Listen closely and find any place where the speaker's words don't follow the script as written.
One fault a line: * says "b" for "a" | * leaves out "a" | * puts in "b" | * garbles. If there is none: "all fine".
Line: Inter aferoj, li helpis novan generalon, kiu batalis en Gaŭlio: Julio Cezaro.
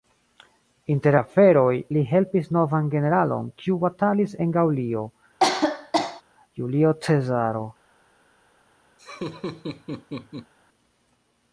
all fine